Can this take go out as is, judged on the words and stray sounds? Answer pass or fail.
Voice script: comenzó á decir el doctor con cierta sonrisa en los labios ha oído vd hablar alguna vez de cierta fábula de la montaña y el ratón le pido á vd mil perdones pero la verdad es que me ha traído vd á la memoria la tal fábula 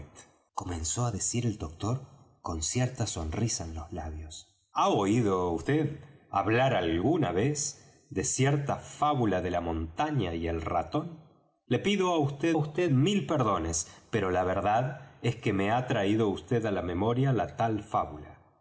fail